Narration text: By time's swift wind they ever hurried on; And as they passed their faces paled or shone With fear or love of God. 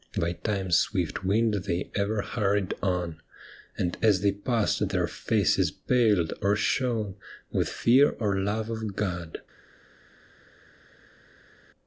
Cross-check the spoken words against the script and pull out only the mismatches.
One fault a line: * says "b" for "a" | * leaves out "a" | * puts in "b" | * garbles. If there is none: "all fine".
all fine